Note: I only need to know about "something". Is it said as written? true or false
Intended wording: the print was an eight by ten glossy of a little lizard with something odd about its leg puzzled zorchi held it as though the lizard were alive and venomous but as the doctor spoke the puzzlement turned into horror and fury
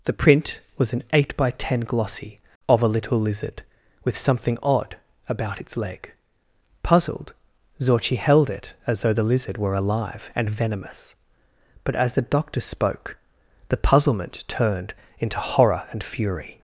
true